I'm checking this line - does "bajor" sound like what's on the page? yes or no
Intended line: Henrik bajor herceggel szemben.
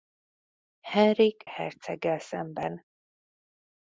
no